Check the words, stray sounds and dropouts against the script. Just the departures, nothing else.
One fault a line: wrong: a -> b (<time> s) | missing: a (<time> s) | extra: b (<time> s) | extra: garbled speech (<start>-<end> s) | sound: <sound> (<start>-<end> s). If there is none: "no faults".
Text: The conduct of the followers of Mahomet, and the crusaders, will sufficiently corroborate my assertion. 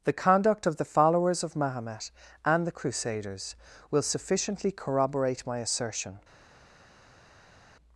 no faults